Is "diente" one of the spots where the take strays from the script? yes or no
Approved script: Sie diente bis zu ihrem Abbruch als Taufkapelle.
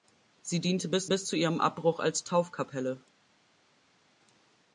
no